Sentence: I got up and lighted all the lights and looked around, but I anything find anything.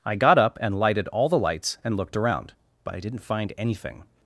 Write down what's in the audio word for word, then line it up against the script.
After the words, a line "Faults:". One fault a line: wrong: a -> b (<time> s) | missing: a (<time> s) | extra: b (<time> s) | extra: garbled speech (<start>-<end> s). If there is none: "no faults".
I got up and lighted all the lights and looked around, but I didn't find anything.
Faults:
wrong: anything -> didn't (3.0 s)